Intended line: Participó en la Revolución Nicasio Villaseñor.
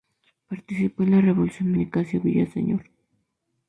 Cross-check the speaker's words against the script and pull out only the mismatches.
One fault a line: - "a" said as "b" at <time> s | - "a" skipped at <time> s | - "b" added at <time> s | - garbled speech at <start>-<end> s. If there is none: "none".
none